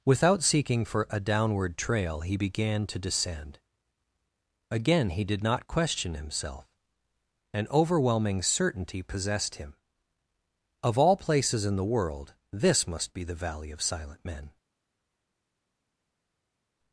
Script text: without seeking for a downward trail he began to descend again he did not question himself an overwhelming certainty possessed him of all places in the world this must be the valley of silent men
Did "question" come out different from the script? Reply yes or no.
no